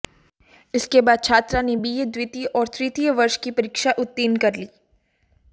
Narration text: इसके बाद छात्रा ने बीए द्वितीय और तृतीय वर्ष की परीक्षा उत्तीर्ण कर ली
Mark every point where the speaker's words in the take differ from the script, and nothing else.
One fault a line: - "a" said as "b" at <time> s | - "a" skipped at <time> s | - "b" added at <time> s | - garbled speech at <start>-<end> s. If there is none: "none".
none